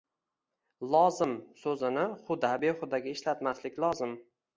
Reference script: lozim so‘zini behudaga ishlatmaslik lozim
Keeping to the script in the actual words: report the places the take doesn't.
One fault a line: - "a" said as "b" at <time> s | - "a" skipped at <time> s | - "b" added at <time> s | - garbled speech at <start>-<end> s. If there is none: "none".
- "huda" added at 2.3 s